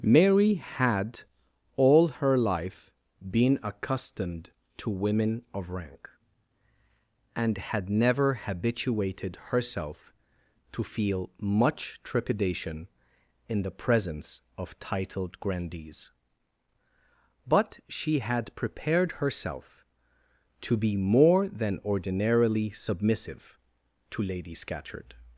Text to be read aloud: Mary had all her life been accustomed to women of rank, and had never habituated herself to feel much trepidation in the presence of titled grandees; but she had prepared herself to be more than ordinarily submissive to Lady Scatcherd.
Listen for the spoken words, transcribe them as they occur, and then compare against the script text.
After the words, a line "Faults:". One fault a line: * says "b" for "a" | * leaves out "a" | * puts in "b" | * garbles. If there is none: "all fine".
Mary had all her life been accustomed to women of rank, and had never habituated herself to feel much trepidation in the presence of titled grandees; but she had prepared herself to be more than ordinarily submissive to Lady Scatcherd.
Faults:
all fine